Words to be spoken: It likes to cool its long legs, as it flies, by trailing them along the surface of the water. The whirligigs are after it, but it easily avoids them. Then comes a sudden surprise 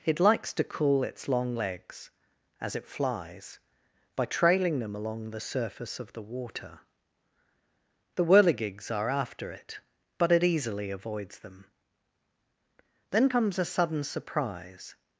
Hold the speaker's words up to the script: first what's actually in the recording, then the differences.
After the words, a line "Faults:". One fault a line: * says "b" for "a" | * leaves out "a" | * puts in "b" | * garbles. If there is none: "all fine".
It likes to cool its long legs, as it flies, by trailing them along the surface of the water. The whirligigs are after it, but it easily avoids them. Then comes a sudden surprise
Faults:
all fine